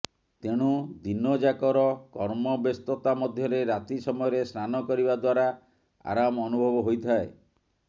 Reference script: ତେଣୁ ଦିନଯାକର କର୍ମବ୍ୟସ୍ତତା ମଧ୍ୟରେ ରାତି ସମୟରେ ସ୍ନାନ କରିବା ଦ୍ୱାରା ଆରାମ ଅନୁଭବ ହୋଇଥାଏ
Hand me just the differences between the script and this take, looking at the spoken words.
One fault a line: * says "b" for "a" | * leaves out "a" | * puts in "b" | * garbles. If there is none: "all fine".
all fine